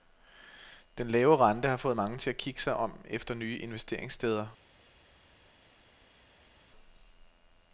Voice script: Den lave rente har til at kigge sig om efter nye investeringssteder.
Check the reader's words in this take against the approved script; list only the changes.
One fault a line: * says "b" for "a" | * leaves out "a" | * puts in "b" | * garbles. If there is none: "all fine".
* puts in "fået mange"